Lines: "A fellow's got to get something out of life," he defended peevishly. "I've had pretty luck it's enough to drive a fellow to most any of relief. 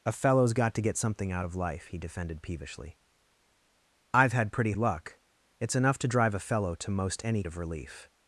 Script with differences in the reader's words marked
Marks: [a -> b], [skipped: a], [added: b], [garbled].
"A fellow's got to get something out of life," he defended peevishly. "I've had pretty luck it's enough to drive a fellow to most any of relief.